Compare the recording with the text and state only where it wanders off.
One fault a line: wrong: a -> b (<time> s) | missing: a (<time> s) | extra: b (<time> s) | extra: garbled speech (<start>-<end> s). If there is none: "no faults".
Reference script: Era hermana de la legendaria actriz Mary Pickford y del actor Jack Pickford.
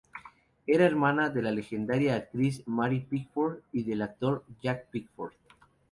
no faults